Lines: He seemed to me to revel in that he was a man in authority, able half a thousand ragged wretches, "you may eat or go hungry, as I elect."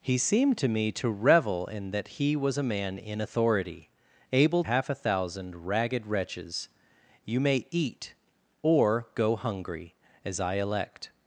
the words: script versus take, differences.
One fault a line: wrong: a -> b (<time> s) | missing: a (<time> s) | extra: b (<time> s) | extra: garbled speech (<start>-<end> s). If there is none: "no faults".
no faults